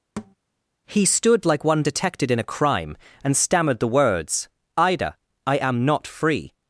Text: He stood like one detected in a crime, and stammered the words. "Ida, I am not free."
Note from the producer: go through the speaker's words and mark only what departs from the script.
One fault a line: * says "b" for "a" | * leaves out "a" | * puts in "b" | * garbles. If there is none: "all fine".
all fine